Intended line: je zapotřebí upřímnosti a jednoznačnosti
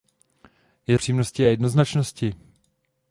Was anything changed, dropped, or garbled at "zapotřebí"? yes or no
yes